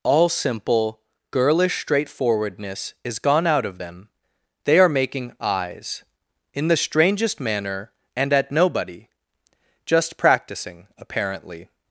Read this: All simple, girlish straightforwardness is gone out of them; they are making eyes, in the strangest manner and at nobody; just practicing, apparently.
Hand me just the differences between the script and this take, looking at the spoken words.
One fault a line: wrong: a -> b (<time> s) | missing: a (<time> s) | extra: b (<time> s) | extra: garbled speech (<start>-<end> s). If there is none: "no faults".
no faults